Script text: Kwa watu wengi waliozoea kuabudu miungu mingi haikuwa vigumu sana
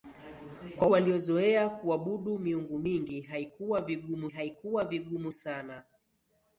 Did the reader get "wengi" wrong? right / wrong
wrong